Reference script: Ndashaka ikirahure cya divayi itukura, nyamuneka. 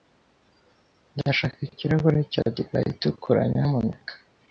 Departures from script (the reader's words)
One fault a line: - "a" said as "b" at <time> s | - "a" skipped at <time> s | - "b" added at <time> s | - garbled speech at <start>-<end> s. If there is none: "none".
none